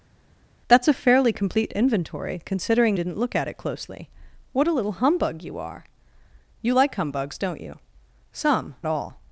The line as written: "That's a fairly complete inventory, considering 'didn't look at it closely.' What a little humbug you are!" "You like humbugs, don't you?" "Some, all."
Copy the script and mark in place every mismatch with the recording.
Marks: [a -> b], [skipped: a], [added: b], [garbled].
"That's a fairly complete inventory, considering 'didn't look at it closely.' What a little humbug you are!" "You like humbugs, don't you?" "Some, all."